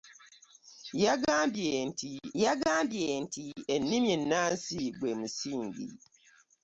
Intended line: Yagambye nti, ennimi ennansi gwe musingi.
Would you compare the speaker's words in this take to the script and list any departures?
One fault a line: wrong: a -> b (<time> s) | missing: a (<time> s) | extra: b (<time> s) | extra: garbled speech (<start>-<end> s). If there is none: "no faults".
extra: yagambye nti (2.4 s)